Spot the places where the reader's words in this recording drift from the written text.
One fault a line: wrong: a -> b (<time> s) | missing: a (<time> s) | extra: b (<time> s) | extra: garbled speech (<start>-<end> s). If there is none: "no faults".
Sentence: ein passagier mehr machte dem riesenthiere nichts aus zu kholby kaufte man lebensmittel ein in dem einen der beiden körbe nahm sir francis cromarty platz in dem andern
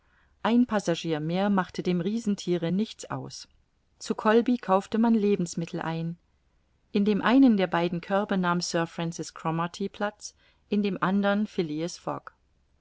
no faults